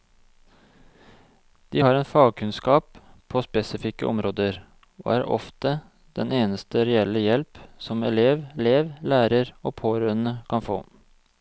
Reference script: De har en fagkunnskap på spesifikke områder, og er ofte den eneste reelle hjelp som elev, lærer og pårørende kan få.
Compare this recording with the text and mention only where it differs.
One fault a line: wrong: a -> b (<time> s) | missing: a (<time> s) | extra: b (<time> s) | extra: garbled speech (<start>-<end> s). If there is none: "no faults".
extra: elev (8.6 s)